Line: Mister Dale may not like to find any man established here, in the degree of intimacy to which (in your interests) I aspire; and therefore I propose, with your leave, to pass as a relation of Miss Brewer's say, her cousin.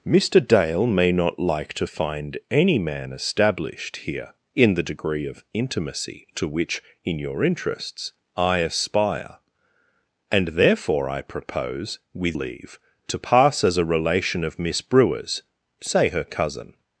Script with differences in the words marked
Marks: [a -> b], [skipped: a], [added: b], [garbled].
Mister Dale may not like to find any man established here, in the degree of intimacy to which (in your interests) I aspire; and therefore I propose, with [skipped: your] leave, to pass as a relation of Miss Brewer's say, her cousin.